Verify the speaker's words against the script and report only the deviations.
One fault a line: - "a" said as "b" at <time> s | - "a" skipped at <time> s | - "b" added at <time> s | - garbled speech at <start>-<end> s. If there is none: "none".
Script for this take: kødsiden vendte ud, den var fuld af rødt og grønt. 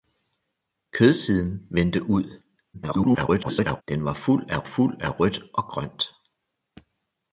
- garbled speech at 2.7-3.8 s
- "fuld af" added at 4.6 s